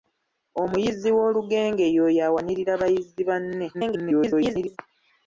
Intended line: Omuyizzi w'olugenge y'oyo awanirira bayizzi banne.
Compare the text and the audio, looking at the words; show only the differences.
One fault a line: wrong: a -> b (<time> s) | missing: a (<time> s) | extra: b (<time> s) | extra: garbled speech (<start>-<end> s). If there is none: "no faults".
extra: garbled speech (3.7-4.8 s)